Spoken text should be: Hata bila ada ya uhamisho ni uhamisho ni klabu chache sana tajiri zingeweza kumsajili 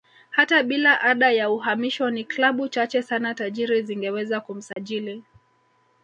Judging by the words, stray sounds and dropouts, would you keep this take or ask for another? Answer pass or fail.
fail